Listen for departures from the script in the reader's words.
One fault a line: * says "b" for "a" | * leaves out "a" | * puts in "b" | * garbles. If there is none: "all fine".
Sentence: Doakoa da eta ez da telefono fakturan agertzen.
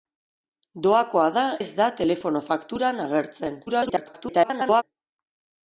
* leaves out "eta"
* garbles